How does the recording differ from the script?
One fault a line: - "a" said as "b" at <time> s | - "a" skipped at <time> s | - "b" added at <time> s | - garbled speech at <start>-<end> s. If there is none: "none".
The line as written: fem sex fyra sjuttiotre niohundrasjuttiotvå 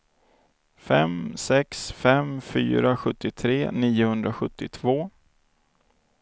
- "fem" added at 2.0 s